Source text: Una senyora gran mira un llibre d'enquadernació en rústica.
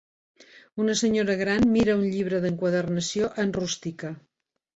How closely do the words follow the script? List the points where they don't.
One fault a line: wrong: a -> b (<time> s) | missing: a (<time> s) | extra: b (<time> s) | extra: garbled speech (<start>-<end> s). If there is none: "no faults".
no faults